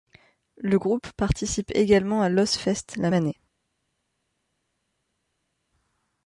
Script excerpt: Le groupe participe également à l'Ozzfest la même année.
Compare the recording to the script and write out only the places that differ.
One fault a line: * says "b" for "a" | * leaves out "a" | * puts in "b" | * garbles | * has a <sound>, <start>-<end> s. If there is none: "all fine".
* leaves out "même"